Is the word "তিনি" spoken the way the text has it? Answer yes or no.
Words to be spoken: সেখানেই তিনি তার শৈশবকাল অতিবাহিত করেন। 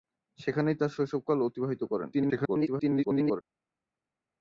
no